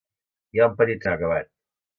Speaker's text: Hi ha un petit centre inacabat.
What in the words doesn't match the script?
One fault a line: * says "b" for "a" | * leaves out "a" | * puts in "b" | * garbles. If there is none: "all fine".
* leaves out "centre"